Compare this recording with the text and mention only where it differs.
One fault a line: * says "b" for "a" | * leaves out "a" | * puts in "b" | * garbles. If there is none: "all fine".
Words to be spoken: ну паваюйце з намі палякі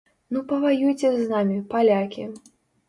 all fine